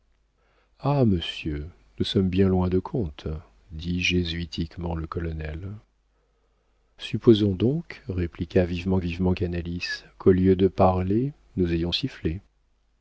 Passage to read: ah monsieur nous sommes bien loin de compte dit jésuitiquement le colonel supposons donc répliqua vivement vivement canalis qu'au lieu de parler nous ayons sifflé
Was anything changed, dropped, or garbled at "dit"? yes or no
no